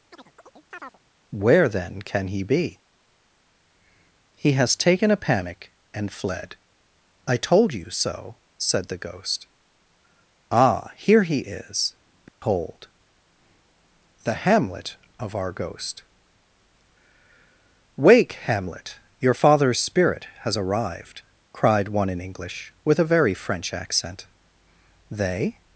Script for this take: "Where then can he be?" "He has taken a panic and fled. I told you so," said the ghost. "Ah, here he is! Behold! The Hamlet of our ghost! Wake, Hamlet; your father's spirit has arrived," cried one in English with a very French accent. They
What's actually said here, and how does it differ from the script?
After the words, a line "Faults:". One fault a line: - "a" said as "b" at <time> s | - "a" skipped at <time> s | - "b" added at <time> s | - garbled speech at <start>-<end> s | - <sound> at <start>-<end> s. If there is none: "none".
"Where then can he be?" "He has taken a panic and fled. I told you so," said the ghost. "Ah, here he is! Behold! The Hamlet of our ghost! Wake, Hamlet; your father's spirit has arrived," cried one in English with a very French accent. They
Faults:
- chirp at 0.1-1.0 s
- dropout at 12.3-12.4 s